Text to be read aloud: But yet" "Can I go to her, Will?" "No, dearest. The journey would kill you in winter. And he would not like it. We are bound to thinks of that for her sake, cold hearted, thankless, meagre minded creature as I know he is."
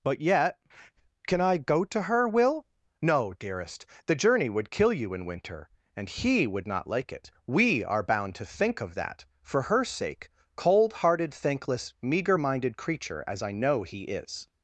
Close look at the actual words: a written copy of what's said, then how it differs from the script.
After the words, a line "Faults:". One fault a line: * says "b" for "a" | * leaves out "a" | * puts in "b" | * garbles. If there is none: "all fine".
But yet" "Can I go to her, Will?" "No, dearest. The journey would kill you in winter. And he would not like it. We are bound to think of that for her sake, cold hearted, thankless, meagre minded creature as I know he is."
Faults:
* says "think" for "thinks"